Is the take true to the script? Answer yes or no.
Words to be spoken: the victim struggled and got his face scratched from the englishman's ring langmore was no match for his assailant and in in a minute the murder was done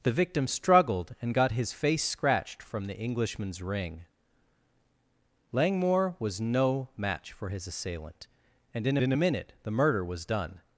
yes